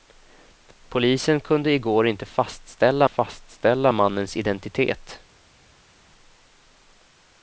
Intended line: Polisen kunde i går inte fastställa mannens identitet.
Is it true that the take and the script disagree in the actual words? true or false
true